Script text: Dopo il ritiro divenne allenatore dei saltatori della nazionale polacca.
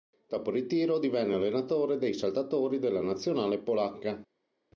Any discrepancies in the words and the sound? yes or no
no